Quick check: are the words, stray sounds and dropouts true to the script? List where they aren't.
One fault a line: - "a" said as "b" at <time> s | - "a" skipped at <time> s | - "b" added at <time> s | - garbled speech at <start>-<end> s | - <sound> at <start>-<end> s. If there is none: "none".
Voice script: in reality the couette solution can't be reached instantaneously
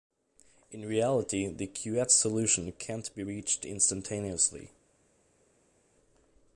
none